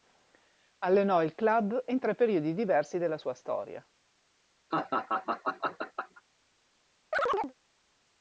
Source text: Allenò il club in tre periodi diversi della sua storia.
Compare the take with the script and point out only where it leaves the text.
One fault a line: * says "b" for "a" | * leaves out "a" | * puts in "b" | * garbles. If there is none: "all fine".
all fine